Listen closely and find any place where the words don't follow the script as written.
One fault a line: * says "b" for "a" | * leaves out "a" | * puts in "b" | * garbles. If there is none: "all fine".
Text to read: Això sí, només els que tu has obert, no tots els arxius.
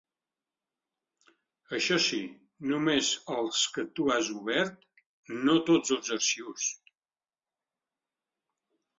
all fine